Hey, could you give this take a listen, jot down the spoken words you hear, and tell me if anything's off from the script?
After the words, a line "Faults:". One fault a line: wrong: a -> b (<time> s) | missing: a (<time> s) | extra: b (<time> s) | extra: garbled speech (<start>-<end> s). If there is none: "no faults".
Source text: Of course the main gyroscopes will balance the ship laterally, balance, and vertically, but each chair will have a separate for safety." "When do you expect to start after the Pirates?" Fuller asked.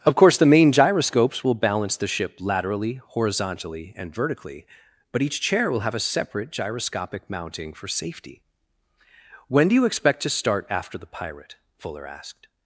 Of course the main gyroscopes will balance the ship laterally, horizontally, and vertically, but each chair will have a separate gyroscopic mounting for safety." "When do you expect to start after the Pirate?" Fuller asked.
Faults:
wrong: balance -> horizontally (3.0 s)
extra: gyroscopic mounting (6.5 s)
wrong: Pirates -> Pirate (11.1 s)